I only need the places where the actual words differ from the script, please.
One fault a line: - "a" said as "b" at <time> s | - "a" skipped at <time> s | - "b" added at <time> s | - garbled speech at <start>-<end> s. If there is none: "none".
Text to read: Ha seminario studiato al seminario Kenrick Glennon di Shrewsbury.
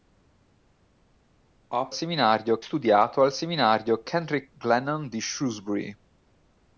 none